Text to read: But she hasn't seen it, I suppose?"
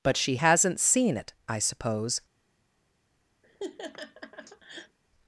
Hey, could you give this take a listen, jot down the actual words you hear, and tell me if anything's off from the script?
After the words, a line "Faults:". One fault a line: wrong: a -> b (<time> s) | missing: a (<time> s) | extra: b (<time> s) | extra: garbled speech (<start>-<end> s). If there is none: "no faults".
But she hasn't seen it, I suppose?"
Faults:
no faults